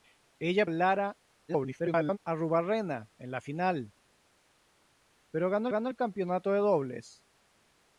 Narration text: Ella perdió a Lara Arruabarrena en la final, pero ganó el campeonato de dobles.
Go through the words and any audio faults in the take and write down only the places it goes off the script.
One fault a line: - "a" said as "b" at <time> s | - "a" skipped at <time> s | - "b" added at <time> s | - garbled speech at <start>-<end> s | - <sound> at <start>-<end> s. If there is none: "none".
- "perdió" skipped at 0.7 s
- garbled speech at 1.5-2.2 s
- "ganó" added at 5.7 s